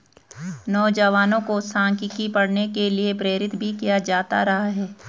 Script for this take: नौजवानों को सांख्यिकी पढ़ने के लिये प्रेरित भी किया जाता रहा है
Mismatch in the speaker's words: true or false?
false